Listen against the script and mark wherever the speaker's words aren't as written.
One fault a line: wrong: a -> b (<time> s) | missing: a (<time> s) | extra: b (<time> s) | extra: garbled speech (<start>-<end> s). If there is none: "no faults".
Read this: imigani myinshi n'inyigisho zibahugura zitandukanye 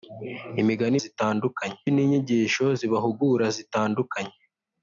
wrong: myinshi -> zitandukanye (1.0 s)